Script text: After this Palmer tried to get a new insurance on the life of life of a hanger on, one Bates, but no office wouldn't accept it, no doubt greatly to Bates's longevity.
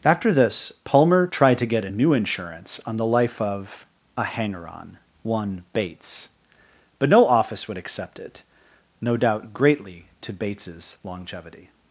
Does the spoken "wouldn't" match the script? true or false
false